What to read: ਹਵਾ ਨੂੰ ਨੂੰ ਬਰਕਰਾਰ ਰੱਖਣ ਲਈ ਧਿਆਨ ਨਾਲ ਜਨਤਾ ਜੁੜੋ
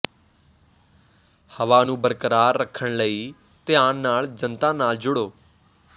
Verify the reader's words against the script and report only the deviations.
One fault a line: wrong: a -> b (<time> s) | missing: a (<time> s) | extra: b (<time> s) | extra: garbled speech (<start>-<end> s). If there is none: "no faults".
missing: ਨੂੰ (2.0 s)
extra: ਨਾਲ (4.7 s)